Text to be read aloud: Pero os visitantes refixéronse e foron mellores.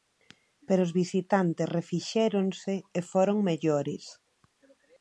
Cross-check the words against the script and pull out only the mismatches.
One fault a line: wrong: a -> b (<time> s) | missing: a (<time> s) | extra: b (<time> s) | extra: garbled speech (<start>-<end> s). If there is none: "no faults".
no faults